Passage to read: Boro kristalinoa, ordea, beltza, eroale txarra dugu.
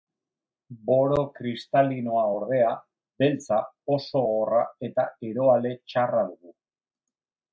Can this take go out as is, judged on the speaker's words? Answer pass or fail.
fail